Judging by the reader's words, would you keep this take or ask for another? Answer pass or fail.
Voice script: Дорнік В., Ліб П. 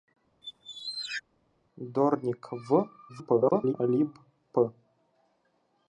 fail